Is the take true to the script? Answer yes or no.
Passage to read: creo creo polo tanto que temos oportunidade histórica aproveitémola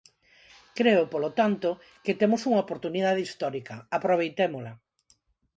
no